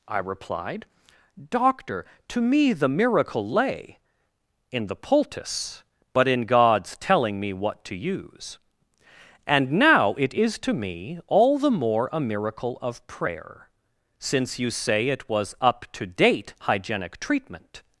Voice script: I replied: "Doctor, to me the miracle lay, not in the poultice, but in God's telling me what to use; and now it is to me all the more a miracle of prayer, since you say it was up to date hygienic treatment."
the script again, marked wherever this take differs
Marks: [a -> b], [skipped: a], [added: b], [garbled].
I replied: "Doctor, to me the miracle lay, [skipped: not] in the poultice, but in God's telling me what to use; and now it is to me all the more a miracle of prayer, since you say it was up to date hygienic treatment."